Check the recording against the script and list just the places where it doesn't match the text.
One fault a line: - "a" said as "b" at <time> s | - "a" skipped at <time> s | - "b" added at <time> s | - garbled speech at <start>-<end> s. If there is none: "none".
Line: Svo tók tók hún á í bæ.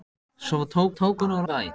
none